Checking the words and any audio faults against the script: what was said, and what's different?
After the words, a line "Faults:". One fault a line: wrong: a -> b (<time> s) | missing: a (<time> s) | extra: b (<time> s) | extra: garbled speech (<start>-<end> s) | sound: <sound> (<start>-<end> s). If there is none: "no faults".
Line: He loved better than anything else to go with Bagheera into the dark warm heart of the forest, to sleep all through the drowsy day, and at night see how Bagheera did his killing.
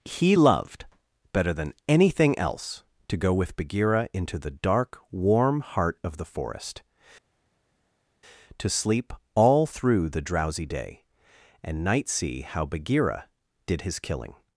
He loved better than anything else to go with Bagheera into the dark warm heart of the forest, to sleep all through the drowsy day, and night see how Bagheera did his killing.
Faults:
missing: at (11.8 s)